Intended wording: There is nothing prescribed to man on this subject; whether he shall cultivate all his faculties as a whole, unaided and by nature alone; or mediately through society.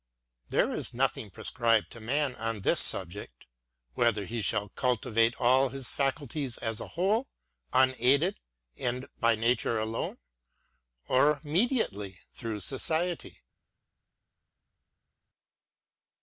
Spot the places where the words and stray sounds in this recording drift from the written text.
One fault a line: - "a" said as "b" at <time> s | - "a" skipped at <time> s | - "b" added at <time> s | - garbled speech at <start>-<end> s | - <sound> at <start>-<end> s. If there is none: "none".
none